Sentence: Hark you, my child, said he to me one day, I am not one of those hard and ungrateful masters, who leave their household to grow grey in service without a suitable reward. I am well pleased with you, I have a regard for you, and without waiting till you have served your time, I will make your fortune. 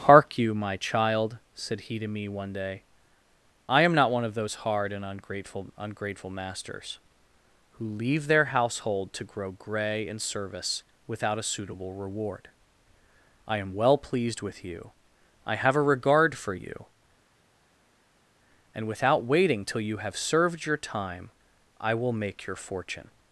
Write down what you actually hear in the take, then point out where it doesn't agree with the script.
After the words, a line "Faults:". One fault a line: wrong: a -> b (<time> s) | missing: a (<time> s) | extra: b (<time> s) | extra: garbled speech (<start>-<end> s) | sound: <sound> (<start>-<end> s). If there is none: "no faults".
Hark you, my child, said he to me one day, I am not one of those hard and ungrateful ungrateful masters, who leave their household to grow grey in service without a suitable reward. I am well pleased with you, I have a regard for you, and without waiting till you have served your time, I will make your fortune.
Faults:
extra: ungrateful (5.8 s)